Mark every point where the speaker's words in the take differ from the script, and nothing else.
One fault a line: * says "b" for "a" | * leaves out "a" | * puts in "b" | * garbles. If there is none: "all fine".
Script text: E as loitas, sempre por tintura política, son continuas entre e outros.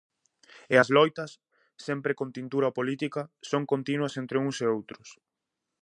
* says "con" for "por"
* puts in "uns"